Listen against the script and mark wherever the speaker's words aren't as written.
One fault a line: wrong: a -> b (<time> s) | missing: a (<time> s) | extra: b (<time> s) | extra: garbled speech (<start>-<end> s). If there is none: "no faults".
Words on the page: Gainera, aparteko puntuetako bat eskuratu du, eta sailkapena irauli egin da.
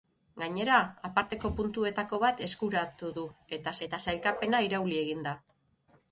extra: eta (3.9 s)